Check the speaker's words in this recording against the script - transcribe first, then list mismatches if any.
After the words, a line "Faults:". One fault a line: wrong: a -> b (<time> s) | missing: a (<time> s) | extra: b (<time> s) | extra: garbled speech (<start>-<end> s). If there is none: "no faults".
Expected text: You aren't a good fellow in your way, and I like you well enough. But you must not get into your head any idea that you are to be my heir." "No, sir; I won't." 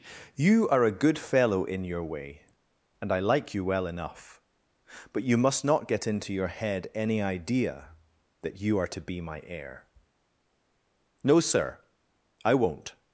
You are a good fellow in your way, and I like you well enough. But you must not get into your head any idea that you are to be my heir." "No, sir; I won't."
Faults:
wrong: aren't -> are (0.7 s)